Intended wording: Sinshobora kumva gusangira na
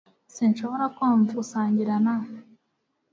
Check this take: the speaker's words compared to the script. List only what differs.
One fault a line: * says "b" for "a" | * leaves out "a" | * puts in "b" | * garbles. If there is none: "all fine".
all fine